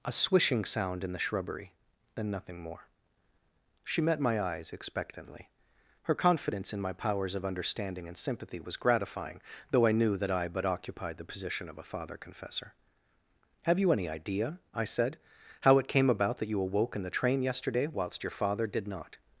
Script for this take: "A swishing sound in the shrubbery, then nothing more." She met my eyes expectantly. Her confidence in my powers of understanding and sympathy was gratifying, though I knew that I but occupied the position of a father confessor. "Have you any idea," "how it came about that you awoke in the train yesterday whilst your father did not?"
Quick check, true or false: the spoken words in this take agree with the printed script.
false